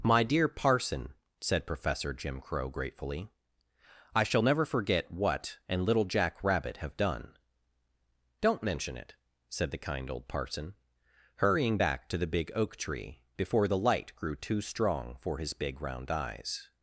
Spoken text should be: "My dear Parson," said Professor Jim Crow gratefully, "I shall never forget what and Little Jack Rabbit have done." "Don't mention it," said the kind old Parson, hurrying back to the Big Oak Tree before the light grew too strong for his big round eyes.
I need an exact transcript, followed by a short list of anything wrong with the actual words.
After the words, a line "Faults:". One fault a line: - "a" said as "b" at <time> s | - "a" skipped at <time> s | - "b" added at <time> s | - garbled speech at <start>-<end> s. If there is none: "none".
"My dear Parson," said Professor Jim Crow gratefully, "I shall never forget what and Little Jack Rabbit have done." "Don't mention it," said the kind old Parson, hurrying back to the Big Oak Tree before the light grew too strong for his big round eyes.
Faults:
none